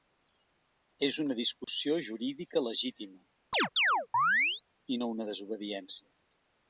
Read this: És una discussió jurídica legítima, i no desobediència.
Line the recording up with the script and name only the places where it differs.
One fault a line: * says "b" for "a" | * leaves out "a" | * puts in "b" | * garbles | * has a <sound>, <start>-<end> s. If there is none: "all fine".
* has a dropout, 1.6-1.7 s
* has a chirp, 3.5-4.6 s
* puts in "una"